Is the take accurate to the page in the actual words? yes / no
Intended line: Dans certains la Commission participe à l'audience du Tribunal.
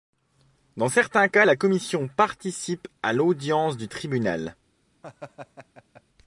no